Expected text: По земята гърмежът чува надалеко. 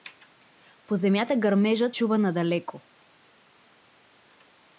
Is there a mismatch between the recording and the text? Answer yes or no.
no